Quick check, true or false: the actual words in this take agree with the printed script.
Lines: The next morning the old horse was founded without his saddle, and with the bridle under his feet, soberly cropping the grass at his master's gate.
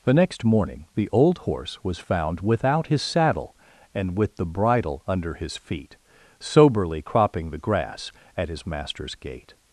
false